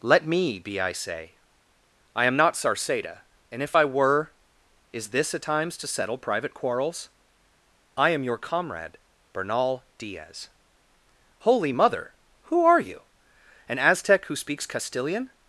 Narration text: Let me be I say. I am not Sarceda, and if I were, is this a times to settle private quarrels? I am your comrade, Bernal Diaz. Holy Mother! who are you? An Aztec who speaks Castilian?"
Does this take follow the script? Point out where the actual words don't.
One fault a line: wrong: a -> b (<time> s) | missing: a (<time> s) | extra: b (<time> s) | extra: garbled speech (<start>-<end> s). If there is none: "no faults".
no faults